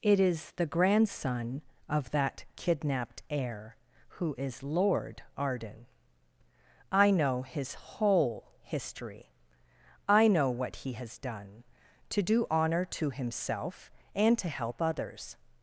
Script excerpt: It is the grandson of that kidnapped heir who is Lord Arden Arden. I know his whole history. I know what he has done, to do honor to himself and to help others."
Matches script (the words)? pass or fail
fail